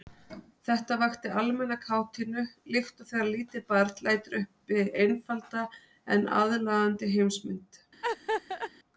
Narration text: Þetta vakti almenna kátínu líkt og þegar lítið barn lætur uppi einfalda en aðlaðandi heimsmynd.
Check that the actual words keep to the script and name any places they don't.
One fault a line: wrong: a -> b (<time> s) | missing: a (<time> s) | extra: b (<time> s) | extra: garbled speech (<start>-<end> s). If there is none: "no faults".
no faults